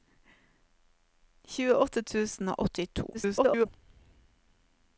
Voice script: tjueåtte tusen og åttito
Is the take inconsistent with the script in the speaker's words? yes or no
yes